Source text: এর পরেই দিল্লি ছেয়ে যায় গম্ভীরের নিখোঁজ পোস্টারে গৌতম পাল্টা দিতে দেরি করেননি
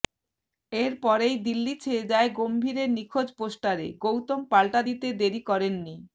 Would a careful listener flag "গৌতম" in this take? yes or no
no